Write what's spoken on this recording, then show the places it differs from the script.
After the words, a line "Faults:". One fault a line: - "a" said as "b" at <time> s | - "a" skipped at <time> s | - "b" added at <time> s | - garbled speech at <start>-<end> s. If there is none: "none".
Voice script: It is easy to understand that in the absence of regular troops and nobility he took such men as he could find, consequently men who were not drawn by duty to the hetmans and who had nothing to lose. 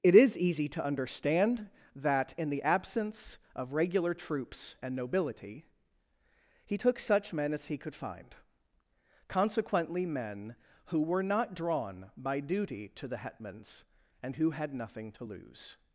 It is easy to understand that in the absence of regular troops and nobility he took such men as he could find, consequently men who were not drawn by duty to the hetmans and who had nothing to lose.
Faults:
none